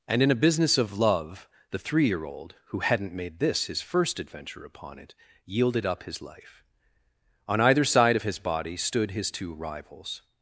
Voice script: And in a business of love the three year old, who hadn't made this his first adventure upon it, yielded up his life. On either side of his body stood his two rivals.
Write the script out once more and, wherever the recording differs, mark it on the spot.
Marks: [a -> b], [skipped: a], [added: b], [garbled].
And in a business of love the three year old, who hadn't made this his first adventure upon it, yielded up his life. On either side of his body stood his two rivals.